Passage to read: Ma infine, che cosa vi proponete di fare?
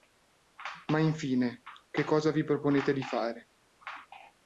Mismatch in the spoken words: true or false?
false